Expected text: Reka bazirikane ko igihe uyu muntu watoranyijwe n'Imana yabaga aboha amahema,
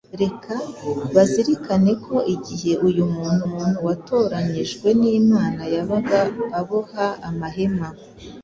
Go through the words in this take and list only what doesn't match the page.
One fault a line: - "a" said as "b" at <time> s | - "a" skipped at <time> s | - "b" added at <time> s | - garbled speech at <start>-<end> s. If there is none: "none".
- "muntu" added at 3.5 s